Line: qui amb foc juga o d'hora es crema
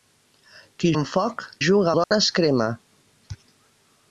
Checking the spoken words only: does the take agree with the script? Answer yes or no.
yes